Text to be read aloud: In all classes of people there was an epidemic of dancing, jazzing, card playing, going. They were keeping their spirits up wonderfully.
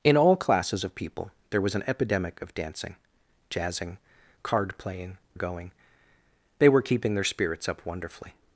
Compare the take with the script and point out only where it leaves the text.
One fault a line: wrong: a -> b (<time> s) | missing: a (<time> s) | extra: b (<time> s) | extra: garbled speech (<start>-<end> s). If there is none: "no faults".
no faults